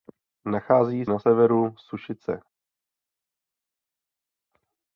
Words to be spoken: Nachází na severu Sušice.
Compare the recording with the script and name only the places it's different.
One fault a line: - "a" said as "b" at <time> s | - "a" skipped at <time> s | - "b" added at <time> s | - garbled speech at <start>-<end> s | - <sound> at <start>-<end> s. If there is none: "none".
none